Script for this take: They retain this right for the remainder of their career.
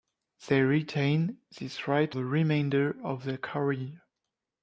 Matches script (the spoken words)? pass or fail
fail